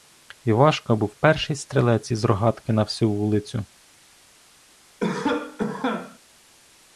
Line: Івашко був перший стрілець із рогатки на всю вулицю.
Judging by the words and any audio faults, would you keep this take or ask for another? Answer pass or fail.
fail